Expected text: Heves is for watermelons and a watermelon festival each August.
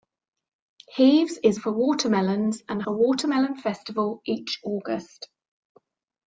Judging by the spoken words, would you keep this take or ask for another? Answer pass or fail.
pass